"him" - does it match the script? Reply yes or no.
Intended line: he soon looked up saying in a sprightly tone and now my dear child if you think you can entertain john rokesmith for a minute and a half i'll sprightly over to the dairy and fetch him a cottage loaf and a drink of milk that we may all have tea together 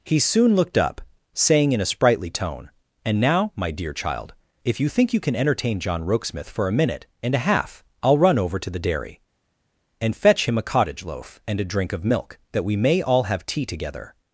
yes